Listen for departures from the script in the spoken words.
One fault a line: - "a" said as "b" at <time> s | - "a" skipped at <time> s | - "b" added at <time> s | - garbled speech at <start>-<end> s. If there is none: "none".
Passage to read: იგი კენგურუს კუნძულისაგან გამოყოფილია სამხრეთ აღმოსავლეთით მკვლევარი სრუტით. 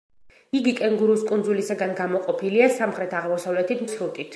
- "მკვლევარი" skipped at 3.9 s